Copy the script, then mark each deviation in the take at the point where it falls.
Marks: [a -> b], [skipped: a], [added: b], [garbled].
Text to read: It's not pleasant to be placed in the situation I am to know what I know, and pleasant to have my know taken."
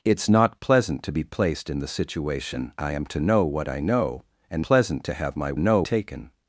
It's not pleasant to be placed in the situation I am to know what I know, and pleasant to have my know taken."